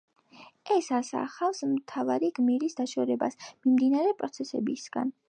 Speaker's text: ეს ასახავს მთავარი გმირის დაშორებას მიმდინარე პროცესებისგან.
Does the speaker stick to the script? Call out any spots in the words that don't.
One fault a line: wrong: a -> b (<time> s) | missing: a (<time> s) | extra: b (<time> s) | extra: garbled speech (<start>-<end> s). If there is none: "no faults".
no faults